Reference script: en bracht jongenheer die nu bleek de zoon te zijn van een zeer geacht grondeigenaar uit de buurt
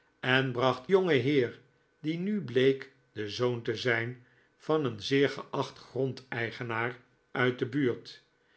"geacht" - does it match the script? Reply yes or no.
yes